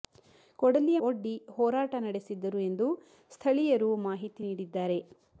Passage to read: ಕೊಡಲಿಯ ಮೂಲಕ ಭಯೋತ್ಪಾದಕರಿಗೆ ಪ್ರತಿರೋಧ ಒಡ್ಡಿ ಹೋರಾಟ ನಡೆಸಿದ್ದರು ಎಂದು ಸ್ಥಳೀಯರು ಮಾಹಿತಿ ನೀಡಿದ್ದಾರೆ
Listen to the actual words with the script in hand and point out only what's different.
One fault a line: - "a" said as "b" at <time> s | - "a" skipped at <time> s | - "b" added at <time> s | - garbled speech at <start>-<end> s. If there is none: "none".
- "ಮೂಲಕ ಭಯೋತ್ಪಾದಕರಿಗೆ ಪ್ರತಿರೋಧ" skipped at 1.0 s